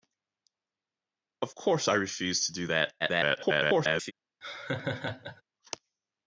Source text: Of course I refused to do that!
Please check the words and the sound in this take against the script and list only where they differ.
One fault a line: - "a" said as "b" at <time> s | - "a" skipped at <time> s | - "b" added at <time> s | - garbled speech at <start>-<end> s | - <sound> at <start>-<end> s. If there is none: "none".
- garbled speech at 3.0-4.1 s
- laugh at 4.4-5.4 s